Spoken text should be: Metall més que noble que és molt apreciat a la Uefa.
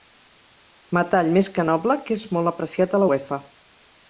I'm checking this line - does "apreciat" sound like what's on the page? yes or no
yes